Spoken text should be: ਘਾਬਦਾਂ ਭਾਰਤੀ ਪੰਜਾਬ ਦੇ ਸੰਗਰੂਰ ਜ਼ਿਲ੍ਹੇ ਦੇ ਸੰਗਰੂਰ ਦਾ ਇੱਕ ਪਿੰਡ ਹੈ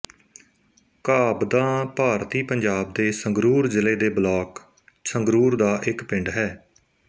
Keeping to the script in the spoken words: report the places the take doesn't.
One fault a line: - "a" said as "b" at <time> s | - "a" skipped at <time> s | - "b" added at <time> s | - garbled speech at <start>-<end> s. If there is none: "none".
- "ਬਲਾਕ" added at 4.1 s